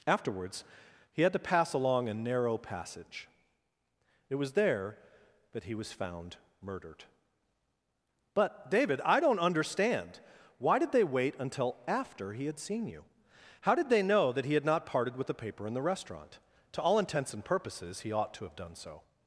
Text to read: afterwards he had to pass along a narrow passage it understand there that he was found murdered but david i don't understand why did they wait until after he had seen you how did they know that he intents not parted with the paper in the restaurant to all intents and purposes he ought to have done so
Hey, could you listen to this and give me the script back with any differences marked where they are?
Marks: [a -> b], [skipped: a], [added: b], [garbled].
afterwards he had to pass along a narrow passage it [understand -> was] there that he was found murdered but david i don't understand why did they wait until after he had seen you how did they know that he [intents -> had] not parted with the paper in the restaurant to all intents and purposes he ought to have done so